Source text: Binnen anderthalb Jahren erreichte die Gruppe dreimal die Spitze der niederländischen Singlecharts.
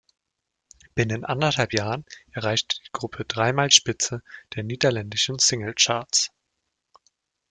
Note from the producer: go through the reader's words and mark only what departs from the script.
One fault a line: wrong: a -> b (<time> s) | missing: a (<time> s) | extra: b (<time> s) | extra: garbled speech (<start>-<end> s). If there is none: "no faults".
missing: die (3.7 s)